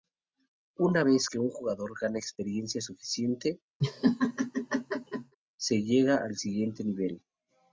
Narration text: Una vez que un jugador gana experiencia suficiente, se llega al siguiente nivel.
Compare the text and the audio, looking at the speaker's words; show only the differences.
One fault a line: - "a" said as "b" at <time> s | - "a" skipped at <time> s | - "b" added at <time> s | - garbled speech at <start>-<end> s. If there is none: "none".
none